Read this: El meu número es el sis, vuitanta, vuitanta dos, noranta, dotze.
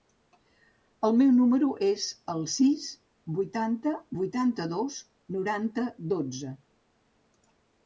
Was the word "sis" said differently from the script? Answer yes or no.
no